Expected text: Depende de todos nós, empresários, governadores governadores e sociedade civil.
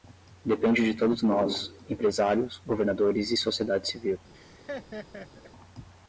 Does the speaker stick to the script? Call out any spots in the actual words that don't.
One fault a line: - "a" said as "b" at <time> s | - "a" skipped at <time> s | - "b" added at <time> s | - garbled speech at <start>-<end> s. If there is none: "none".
- "governadores" skipped at 3.3 s